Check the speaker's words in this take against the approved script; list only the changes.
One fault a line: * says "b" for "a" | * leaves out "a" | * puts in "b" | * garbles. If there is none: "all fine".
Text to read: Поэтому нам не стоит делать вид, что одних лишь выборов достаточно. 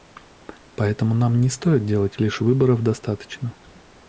* leaves out "вид что одних"